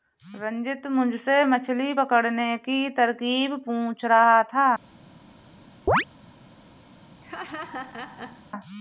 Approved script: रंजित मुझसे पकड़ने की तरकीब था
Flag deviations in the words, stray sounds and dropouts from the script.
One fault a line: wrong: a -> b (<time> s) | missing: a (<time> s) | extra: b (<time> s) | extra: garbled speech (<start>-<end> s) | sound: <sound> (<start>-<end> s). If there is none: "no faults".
extra: मछली (1.4 s)
extra: पूछ रहा (3.6 s)
sound: chirp (5.9-6.0 s)
sound: laugh (7.2-8.5 s)